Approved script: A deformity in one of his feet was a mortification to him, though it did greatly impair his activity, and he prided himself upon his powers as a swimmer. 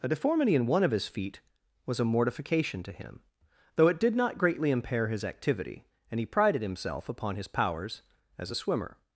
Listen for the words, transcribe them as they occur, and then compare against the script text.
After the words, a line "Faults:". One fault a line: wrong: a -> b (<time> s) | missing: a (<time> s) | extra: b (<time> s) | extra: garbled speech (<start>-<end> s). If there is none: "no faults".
A deformity in one of his feet was a mortification to him, though it did not greatly impair his activity, and he prided himself upon his powers as a swimmer.
Faults:
extra: not (4.2 s)